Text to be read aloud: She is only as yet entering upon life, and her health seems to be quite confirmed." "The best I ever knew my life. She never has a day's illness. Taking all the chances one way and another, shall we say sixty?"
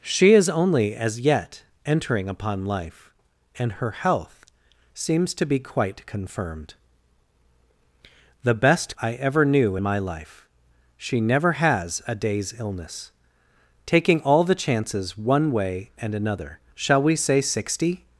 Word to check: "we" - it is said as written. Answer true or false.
true